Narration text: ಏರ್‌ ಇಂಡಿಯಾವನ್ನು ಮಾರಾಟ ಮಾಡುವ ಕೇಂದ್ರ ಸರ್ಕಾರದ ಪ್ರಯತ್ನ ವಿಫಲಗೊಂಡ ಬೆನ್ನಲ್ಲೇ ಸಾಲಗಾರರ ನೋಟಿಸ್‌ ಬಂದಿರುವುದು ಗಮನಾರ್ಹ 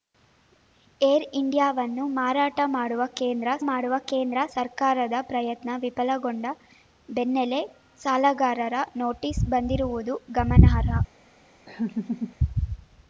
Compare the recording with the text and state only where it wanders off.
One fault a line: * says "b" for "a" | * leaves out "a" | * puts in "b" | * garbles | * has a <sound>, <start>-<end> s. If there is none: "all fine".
* puts in "ಮಾಡುವ ಕೇಂದ್ರ"
* has a laugh, 11.7-12.4 s